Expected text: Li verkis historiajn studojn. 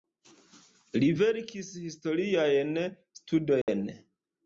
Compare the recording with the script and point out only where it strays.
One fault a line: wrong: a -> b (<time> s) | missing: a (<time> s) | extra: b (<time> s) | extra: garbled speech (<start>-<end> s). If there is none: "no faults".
no faults